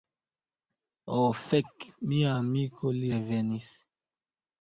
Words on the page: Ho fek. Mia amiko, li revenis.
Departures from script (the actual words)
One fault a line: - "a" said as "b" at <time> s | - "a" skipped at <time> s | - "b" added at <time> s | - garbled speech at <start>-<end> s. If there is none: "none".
none